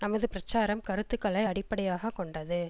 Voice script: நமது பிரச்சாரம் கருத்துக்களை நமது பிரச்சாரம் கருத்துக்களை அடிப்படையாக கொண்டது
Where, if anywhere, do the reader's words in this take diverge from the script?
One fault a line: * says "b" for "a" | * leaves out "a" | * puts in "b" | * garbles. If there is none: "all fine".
* leaves out "நமது பிரச்சாரம் கருத்துக்களை"